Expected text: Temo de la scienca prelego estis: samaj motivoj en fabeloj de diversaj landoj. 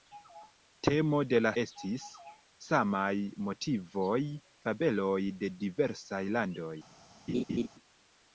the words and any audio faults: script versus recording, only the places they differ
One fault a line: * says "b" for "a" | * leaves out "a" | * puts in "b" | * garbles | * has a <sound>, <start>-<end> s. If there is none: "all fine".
* leaves out "scienca prelego"
* leaves out "en"
* has a laugh, 7.3-7.7 s